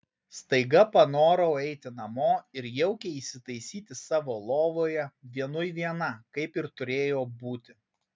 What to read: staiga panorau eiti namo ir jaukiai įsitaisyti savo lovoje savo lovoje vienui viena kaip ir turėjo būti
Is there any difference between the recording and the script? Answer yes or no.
yes